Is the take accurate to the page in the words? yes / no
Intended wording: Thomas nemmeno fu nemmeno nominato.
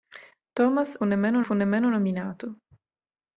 yes